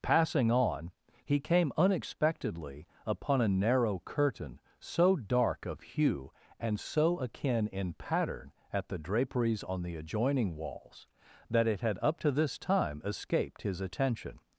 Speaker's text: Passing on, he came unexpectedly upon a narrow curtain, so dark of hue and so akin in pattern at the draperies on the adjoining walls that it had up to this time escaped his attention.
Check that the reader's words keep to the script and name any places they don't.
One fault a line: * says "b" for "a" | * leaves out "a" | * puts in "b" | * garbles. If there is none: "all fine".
all fine